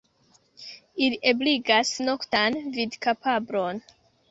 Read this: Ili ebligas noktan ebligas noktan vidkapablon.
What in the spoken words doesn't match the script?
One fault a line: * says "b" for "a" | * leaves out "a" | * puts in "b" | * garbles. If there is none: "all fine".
* leaves out "ebligas noktan"